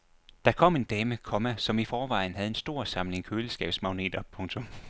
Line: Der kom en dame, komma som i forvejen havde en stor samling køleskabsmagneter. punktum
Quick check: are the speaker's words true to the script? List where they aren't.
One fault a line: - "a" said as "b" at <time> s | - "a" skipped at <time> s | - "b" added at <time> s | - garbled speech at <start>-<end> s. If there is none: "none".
none